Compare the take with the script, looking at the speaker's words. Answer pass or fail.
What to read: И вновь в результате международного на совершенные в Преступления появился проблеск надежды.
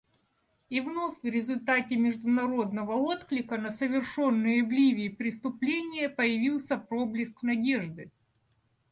fail